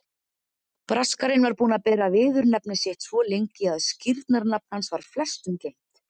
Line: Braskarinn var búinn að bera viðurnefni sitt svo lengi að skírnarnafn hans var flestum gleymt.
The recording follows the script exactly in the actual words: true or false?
true